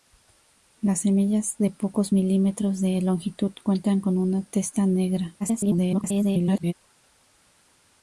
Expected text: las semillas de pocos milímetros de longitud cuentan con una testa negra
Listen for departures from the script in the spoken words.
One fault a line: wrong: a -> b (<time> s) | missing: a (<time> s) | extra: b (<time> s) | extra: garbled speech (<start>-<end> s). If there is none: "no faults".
extra: garbled speech (5.4-6.7 s)